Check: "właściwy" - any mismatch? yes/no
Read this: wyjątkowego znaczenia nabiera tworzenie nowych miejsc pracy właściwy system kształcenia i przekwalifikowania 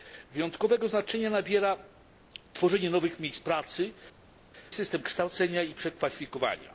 yes